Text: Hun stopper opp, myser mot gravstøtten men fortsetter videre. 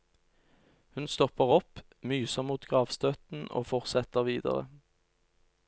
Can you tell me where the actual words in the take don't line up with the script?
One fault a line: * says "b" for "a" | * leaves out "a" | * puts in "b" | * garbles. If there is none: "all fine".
* says "og" for "men"